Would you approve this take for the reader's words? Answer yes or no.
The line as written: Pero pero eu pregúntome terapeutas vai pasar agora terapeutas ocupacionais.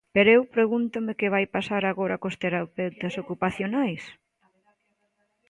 no